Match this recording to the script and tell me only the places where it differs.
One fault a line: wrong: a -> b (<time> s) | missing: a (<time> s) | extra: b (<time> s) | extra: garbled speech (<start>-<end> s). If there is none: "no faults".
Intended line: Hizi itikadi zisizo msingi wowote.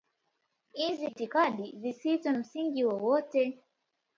no faults